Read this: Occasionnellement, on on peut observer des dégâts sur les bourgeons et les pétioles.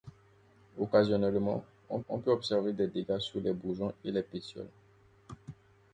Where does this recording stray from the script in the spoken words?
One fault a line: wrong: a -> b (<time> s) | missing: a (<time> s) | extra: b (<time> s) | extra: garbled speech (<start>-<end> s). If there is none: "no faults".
no faults